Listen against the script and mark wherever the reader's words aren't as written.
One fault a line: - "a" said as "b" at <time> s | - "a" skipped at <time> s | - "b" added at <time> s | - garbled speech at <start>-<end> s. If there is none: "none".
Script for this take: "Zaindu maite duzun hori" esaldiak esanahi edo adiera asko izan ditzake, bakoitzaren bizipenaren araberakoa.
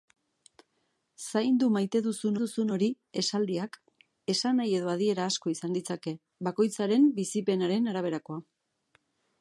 - "duzun" added at 2.4 s